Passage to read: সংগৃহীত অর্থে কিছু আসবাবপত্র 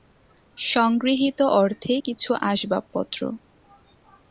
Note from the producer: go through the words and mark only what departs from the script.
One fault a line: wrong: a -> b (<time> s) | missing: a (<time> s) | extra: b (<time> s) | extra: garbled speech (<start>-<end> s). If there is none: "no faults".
no faults